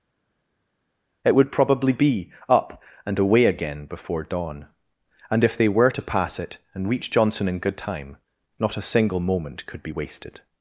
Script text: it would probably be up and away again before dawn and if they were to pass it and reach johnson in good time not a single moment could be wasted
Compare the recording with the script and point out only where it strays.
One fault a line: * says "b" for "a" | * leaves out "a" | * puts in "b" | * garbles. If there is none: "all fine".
all fine